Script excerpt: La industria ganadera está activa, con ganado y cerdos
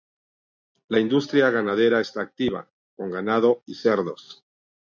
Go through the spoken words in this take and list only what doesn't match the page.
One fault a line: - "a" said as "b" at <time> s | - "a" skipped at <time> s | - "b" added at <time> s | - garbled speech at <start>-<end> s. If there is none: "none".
none